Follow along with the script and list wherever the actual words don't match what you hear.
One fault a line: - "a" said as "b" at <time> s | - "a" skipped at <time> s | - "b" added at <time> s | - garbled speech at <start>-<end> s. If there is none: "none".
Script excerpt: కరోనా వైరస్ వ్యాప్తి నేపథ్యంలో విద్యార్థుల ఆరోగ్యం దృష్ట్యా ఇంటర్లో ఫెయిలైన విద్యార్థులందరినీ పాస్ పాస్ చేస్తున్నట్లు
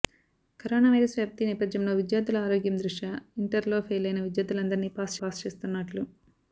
none